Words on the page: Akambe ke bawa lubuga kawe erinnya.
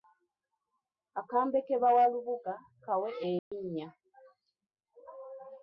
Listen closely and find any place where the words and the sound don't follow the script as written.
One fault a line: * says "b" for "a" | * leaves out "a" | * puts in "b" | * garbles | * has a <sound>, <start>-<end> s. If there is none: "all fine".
* has a dropout, 3.4-3.5 s